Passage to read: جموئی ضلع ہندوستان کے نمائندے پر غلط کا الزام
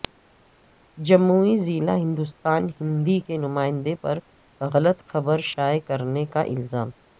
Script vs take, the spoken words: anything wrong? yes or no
yes